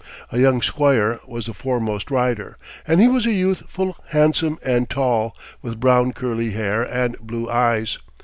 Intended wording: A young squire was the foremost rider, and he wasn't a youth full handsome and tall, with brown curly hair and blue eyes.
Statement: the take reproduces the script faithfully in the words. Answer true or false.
false